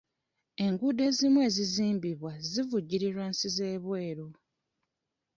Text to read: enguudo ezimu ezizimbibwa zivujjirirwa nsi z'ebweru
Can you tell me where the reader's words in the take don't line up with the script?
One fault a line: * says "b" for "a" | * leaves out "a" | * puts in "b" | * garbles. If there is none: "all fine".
all fine